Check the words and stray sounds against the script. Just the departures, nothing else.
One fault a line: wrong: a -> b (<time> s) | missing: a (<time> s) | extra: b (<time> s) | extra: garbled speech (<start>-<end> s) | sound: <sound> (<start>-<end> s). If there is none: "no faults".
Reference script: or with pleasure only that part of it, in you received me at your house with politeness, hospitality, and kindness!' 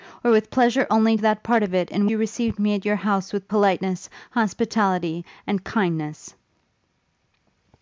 no faults